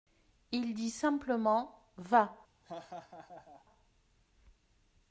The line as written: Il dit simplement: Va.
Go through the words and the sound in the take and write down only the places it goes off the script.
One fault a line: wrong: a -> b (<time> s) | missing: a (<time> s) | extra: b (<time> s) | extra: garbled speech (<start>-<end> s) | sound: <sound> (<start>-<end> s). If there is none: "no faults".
sound: laugh (2.6-3.7 s)